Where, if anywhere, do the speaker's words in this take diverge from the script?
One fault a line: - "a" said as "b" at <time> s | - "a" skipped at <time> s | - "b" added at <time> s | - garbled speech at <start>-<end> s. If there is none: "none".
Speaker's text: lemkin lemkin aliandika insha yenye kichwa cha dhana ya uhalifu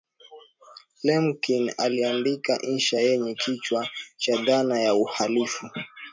- "lemkin" skipped at 1.7 s